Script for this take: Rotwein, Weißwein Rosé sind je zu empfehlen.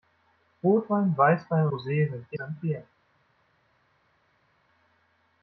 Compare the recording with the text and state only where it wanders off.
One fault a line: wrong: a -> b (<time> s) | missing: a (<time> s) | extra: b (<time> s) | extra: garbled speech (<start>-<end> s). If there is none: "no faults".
no faults